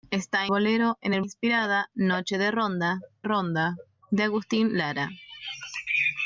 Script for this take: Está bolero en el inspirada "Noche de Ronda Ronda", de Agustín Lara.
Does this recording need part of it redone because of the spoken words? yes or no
no